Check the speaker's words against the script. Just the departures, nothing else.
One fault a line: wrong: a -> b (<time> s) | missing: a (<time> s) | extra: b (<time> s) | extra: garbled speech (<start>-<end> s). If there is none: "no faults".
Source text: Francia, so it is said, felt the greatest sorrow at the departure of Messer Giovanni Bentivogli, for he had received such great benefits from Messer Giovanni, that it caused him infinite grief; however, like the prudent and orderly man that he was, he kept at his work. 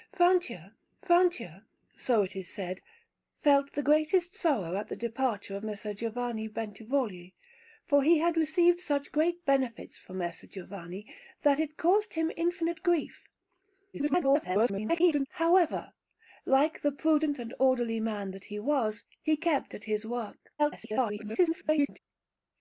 extra: francia (1.0 s)
extra: garbled speech (13.9-15.3 s)
extra: garbled speech (20.6-22.0 s)